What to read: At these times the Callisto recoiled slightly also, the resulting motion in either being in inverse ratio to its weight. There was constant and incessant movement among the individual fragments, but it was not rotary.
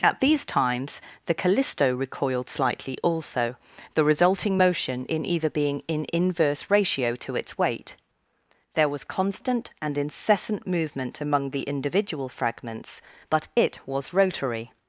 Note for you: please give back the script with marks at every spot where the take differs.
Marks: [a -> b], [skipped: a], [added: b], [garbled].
At these times the Callisto recoiled slightly also, the resulting motion in either being in inverse ratio to its weight. There was constant and incessant movement among the individual fragments, but it was [skipped: not] rotary.